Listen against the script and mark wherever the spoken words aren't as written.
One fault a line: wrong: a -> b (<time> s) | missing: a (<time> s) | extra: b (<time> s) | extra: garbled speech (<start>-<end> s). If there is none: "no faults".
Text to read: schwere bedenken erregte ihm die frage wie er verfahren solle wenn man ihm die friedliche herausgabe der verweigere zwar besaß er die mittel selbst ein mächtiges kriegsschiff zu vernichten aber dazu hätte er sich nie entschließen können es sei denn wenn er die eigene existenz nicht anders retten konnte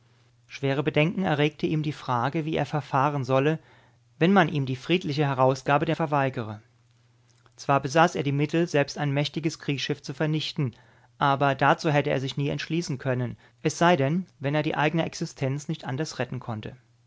no faults